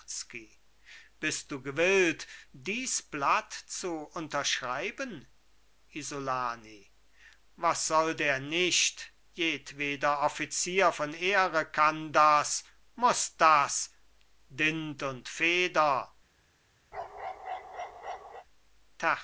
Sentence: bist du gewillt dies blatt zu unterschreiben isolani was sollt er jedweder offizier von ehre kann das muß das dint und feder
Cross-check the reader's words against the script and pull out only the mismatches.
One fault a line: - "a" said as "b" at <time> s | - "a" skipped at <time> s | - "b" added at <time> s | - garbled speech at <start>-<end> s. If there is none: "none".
- "nicht" added at 8.4 s